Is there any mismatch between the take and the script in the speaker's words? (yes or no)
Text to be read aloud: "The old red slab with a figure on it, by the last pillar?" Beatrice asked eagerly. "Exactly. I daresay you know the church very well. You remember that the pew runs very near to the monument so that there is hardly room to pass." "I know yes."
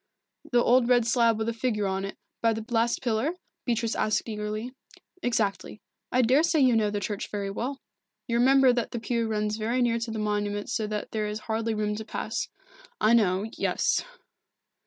no